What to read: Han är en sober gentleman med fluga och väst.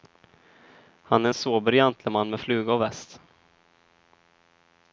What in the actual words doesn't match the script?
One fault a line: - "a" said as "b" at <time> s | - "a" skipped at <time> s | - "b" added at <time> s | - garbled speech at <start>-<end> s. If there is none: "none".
none